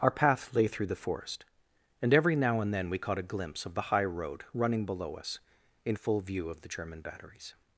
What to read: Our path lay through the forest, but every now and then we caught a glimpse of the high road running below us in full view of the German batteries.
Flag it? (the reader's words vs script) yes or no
yes